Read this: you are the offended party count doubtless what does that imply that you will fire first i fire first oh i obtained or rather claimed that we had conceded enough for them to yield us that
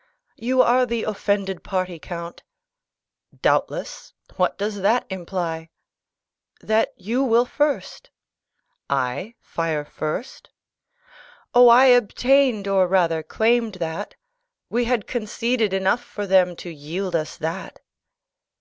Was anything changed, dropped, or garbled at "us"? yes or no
no